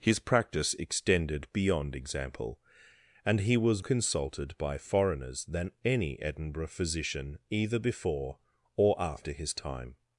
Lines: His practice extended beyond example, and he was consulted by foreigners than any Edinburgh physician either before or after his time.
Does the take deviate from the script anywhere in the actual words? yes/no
no